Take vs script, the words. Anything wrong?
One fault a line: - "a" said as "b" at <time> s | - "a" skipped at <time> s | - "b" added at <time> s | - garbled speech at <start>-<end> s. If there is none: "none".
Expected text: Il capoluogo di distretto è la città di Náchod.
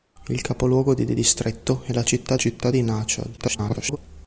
- "di" added at 1.1 s
- "città" added at 2.3 s
- garbled speech at 3.4-4.0 s